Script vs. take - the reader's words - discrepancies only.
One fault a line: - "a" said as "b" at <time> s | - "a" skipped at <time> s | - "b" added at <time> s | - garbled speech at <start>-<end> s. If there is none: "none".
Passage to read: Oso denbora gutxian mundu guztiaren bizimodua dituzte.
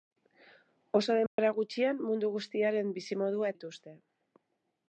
none